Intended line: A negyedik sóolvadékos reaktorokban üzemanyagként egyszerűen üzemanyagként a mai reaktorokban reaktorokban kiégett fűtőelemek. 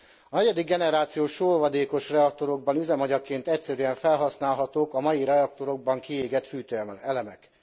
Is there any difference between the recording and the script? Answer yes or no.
yes